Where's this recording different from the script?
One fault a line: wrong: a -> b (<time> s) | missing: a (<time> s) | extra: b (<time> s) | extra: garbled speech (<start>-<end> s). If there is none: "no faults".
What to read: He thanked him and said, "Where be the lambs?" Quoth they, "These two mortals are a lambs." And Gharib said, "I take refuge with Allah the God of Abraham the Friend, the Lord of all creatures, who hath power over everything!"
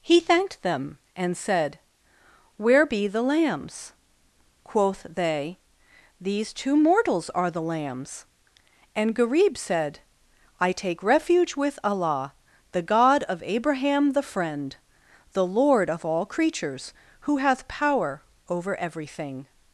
wrong: him -> them (0.6 s)
wrong: a -> the (7.5 s)